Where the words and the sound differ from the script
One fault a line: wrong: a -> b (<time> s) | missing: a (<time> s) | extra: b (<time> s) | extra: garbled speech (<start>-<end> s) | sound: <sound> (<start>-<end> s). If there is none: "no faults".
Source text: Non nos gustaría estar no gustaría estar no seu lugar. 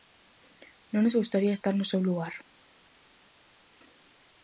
missing: gustaría estar no (1.9 s)